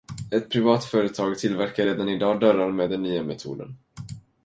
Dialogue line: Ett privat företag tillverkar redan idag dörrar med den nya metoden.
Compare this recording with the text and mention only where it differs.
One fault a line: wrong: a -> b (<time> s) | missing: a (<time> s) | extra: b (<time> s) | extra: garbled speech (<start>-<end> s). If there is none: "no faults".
no faults